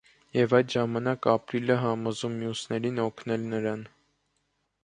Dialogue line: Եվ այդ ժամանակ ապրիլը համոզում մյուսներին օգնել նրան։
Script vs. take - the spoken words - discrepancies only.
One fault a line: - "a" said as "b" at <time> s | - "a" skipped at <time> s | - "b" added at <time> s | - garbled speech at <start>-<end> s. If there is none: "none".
none